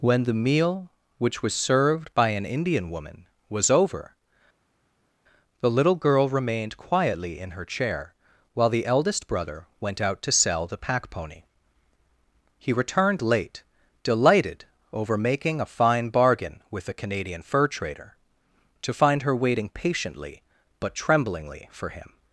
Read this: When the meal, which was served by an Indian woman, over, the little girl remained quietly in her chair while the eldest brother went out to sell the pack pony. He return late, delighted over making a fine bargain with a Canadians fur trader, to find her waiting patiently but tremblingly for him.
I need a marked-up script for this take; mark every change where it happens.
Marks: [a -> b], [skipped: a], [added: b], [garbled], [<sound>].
When the meal, which was served by an Indian woman, [added: was] over, the little girl remained quietly in her chair while the eldest brother went out to sell the pack pony. He [return -> returned] late, delighted over making a fine bargain with a [Canadians -> Canadian] fur trader, to find her waiting patiently but tremblingly for him.